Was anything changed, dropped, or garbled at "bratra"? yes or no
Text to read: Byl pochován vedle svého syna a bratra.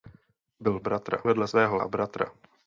no